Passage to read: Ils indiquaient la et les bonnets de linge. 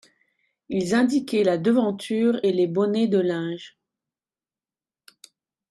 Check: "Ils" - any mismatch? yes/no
no